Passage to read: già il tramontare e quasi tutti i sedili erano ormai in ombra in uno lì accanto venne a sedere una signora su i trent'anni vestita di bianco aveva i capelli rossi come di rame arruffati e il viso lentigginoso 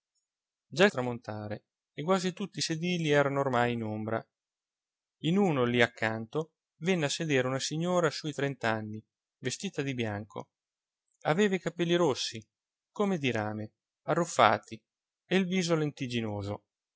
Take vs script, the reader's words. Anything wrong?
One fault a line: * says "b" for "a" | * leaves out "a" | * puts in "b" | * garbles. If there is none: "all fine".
all fine